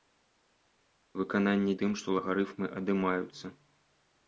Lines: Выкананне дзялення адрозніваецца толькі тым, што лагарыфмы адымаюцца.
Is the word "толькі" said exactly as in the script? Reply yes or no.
no